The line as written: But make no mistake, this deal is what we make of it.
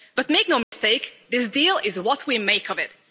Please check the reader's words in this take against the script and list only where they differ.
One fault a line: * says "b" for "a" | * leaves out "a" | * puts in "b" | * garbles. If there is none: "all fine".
all fine